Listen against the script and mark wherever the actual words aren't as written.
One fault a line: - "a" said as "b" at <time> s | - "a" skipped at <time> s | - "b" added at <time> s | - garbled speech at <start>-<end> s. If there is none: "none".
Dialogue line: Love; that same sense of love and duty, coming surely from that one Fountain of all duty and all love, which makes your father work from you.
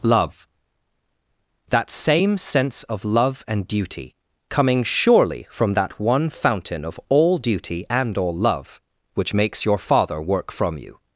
none